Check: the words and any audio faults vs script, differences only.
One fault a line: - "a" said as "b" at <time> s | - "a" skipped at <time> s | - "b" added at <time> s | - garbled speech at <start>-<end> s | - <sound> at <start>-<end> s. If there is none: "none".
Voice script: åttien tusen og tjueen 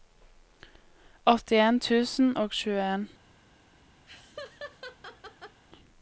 - laugh at 4.1-5.6 s